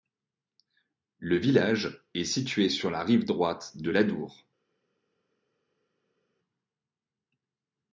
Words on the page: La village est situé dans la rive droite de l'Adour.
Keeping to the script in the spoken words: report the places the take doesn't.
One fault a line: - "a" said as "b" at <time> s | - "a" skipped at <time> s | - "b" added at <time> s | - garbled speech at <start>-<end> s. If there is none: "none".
- "La" said as "Le" at 1.2 s
- "dans" said as "sur" at 2.7 s